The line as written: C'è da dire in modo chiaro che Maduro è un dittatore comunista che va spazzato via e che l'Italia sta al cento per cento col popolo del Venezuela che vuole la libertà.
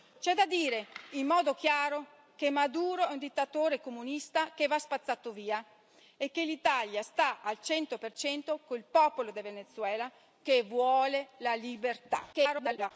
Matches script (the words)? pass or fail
fail